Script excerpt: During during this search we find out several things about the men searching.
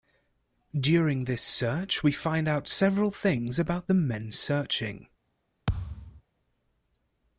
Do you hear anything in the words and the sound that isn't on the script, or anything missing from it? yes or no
yes